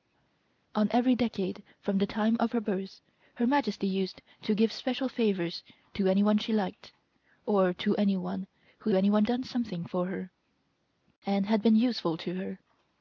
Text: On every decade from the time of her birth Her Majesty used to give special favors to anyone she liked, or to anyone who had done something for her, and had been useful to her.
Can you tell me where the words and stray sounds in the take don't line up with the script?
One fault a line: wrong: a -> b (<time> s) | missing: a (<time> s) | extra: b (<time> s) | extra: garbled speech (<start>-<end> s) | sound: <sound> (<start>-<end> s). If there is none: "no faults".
wrong: had -> anyone (8.9 s)